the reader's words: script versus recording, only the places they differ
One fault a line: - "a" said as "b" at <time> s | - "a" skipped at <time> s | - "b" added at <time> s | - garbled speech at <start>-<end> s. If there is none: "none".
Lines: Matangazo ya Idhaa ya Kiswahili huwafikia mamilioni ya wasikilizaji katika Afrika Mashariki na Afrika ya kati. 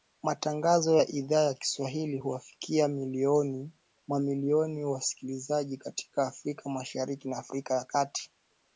none